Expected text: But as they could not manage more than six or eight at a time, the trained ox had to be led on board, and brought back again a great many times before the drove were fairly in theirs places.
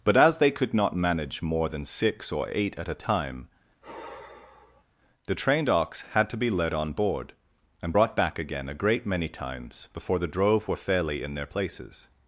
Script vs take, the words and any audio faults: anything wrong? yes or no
yes